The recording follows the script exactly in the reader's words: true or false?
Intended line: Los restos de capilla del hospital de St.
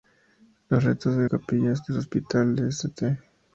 true